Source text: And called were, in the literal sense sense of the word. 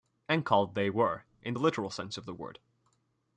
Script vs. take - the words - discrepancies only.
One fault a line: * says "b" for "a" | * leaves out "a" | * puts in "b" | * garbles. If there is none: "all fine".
* puts in "they"
* leaves out "sense"